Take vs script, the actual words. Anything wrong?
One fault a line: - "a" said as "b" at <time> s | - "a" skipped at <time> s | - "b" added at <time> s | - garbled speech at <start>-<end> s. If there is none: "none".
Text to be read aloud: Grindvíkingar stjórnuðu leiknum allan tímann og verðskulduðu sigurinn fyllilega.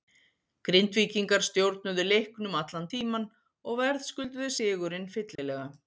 none